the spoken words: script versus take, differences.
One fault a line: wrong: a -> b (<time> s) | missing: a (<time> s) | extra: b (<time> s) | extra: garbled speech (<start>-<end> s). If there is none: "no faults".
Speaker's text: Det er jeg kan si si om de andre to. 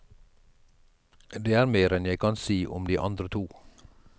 extra: mer enn (1.7 s)
missing: si (2.6 s)